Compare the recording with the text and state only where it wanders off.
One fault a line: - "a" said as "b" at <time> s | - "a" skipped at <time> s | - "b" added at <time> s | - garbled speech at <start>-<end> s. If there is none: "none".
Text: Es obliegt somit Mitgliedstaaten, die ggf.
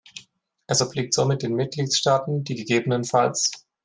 - "den" added at 1.4 s